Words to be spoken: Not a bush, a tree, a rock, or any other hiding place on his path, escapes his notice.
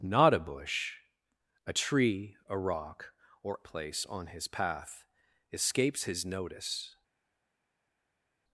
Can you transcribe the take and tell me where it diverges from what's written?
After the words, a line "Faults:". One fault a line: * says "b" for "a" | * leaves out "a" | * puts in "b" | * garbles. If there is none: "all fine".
Not a bush, a tree, a rock, or place on his path, escapes his notice.
Faults:
* leaves out "any other hiding"